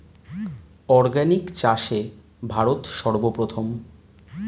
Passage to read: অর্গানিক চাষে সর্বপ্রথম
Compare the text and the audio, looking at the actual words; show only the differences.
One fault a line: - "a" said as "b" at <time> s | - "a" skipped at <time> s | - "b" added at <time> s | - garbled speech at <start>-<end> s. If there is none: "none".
- "ভারত" added at 2.5 s